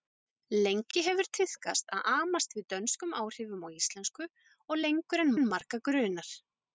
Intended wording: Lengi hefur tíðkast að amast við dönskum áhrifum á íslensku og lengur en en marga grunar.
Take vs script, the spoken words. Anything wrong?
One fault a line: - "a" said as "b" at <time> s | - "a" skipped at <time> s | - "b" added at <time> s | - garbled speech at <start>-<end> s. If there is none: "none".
none